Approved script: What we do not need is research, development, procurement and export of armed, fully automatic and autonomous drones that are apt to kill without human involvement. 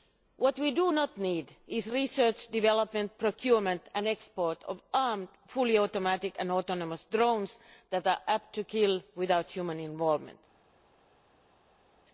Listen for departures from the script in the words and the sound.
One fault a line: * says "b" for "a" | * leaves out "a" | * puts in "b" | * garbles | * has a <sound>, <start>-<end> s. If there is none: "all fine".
all fine